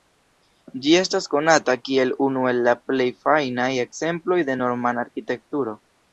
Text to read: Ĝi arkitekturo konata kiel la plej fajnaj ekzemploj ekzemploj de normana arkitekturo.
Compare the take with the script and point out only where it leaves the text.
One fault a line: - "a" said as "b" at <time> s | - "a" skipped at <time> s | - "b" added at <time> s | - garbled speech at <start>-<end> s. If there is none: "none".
- "arkitekturo" said as "estas" at 1.0 s
- "unu el" added at 2.3 s
- "ekzemploj" skipped at 4.4 s